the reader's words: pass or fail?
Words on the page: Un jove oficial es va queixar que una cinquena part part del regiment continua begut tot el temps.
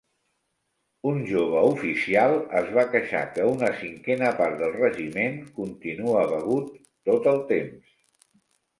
fail